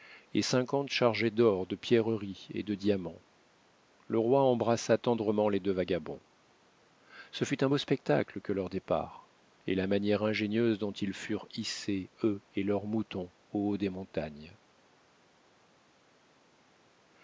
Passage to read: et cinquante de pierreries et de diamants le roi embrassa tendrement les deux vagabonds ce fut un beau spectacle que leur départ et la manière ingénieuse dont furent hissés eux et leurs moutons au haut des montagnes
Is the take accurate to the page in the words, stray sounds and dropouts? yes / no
no